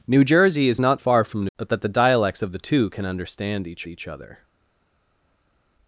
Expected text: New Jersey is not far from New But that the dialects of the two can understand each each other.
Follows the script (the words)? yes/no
yes